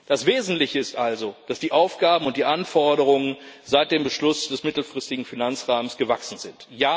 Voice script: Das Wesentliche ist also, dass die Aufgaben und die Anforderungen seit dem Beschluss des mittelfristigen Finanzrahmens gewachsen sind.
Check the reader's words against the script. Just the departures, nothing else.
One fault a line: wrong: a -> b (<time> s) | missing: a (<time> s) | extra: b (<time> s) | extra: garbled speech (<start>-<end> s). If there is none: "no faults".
no faults